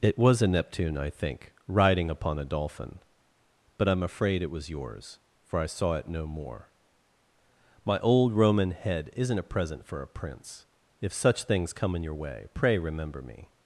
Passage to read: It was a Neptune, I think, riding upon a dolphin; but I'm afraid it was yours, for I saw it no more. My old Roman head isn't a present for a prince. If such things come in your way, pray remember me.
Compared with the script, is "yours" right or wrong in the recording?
right